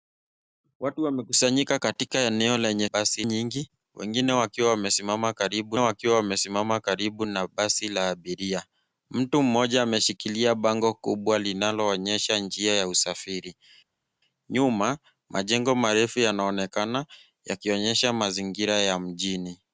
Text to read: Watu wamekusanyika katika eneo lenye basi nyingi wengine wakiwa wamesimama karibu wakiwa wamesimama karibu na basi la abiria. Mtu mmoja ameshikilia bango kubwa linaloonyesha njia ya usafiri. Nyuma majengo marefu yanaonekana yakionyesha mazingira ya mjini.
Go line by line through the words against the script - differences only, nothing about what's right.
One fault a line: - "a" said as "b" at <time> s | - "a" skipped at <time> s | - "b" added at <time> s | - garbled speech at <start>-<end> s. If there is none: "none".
none